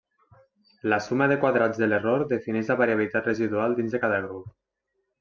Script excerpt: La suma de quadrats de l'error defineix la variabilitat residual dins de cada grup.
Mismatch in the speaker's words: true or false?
false